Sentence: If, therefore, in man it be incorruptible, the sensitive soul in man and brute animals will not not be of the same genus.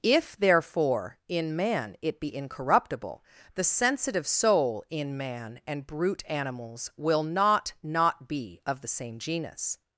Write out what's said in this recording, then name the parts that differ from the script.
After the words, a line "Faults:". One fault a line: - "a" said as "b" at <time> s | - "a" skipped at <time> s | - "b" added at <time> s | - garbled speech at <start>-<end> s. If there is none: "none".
If, therefore, in man it be incorruptible, the sensitive soul in man and brute animals will not not be of the same genus.
Faults:
none